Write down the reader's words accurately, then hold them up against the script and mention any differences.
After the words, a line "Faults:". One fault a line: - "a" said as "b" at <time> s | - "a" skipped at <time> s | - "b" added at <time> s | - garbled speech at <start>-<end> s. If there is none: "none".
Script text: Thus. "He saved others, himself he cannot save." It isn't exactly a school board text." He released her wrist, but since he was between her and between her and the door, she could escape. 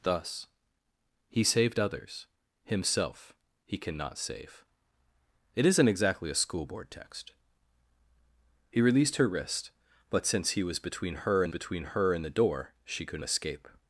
Thus. "He saved others, himself he cannot save." It isn't exactly a school board text." He released her wrist, but since he was between her and between her and the door, she could escape.
Faults:
none